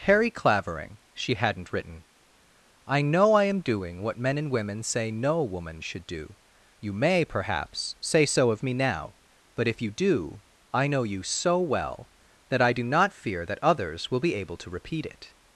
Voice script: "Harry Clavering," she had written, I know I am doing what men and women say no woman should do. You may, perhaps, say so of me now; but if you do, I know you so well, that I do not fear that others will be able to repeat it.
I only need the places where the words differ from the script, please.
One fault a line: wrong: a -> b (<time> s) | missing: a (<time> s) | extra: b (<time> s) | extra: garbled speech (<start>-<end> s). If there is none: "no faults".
wrong: had -> hadn't (1.4 s)